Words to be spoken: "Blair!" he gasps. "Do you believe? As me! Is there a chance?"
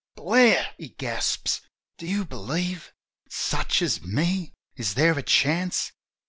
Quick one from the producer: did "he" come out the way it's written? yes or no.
yes